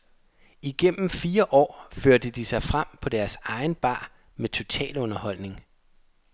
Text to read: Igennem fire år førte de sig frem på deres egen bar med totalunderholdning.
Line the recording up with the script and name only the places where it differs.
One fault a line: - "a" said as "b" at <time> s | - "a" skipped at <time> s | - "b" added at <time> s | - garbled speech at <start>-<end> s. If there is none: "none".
none